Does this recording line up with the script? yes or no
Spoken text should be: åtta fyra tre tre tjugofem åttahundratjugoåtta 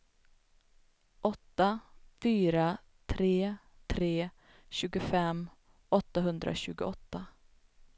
yes